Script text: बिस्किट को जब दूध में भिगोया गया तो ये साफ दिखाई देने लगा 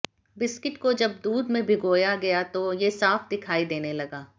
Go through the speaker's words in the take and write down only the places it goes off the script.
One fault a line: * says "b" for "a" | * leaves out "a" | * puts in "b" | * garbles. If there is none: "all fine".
all fine